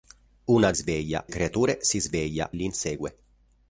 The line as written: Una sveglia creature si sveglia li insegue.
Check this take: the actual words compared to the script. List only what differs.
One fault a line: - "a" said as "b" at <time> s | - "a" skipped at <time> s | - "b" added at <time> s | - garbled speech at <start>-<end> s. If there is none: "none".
none